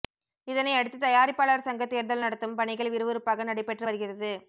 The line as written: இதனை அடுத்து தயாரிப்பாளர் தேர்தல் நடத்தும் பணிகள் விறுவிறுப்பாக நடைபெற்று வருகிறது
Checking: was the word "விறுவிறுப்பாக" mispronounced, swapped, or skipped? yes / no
no